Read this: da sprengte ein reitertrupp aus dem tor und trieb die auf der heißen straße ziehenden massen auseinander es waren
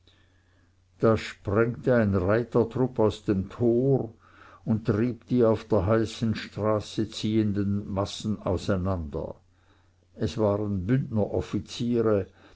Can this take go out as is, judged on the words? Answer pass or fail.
pass